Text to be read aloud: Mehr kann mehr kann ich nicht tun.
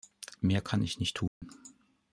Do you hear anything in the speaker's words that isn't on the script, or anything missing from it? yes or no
yes